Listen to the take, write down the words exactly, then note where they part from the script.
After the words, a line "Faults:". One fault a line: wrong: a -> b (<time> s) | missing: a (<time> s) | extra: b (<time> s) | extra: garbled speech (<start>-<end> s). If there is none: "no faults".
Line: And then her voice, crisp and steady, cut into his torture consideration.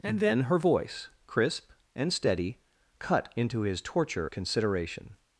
And then her voice, crisp and steady, cut into his torture consideration.
Faults:
no faults